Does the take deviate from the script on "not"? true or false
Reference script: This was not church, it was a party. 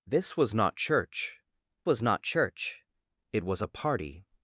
false